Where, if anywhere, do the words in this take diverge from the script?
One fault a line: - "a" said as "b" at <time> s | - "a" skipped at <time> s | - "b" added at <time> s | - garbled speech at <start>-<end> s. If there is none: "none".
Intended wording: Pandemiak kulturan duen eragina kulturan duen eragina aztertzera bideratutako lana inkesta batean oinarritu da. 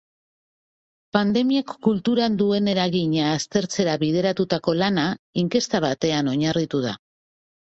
- "kulturan duen eragina" skipped at 3.3 s